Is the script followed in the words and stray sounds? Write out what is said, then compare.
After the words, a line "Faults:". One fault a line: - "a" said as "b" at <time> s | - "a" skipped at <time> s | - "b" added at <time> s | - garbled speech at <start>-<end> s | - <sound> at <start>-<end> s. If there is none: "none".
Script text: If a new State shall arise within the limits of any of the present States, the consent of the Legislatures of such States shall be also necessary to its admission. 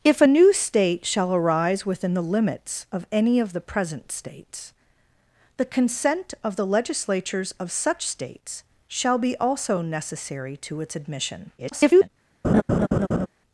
If a new State shall arise within the limits of any of the present States, the consent of the Legislatures of such States shall be also necessary to its admission. [garbled]
Faults:
- garbled speech at 11.6-12.1 s
- laugh at 12.4-13.3 s